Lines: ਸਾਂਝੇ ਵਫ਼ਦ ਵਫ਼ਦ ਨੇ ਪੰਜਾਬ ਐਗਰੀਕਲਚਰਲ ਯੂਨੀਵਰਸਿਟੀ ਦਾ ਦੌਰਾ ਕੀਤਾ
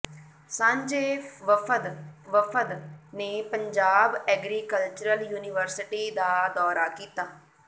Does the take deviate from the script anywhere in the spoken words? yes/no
no